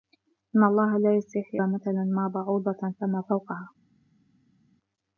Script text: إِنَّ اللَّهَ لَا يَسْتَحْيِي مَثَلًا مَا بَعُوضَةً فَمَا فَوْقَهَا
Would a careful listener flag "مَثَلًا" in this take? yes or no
no